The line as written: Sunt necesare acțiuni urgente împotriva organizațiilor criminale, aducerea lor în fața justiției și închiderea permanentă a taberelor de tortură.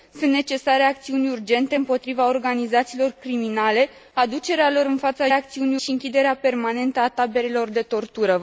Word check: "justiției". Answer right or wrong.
wrong